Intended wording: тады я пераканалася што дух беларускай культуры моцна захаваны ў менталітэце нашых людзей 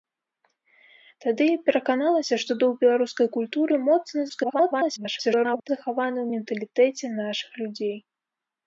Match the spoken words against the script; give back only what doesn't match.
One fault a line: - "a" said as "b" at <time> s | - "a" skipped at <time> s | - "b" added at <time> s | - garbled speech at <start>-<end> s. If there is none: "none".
- garbled speech at 4.3-5.7 s